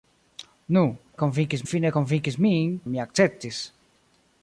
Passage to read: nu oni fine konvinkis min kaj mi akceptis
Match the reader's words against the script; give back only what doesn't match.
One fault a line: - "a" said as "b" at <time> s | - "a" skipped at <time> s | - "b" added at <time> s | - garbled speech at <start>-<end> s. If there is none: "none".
- "oni" said as "konvinkis" at 1.2 s
- "kaj" skipped at 2.8 s